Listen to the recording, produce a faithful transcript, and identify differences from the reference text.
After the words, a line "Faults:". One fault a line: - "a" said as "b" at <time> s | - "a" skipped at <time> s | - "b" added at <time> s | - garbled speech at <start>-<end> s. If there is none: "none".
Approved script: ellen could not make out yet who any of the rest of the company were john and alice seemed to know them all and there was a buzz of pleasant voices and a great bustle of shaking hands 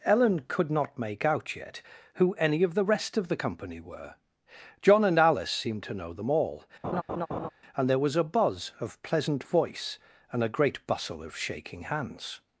ellen could not make out yet who any of the rest of the company were john and alice seemed to know them all and there was a buzz of pleasant voice and a great bustle of shaking hands
Faults:
- "voices" said as "voice" at 9.4 s